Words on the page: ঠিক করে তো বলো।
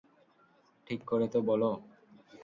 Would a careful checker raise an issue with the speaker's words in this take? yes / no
no